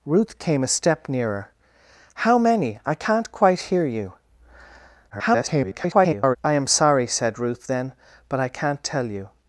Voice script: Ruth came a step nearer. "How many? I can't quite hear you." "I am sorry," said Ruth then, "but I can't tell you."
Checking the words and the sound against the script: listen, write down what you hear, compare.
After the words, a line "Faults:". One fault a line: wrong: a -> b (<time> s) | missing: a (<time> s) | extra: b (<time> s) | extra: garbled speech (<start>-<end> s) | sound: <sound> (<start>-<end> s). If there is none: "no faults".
Ruth came a step nearer. "How many? I can't quite hear you." [garbled] "I am sorry," said Ruth then, "but I can't tell you."
Faults:
extra: garbled speech (5.1-6.4 s)